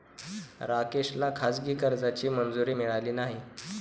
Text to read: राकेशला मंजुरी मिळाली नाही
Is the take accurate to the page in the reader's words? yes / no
no